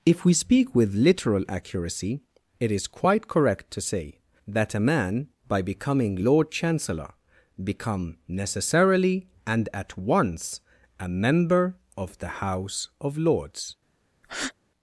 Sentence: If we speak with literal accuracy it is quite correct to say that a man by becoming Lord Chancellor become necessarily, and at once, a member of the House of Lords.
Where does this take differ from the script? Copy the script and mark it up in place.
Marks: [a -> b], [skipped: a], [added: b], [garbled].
If we speak with literal accuracy it is quite correct to say that a man by becoming Lord Chancellor become necessarily, and at once, a member of the House of Lords.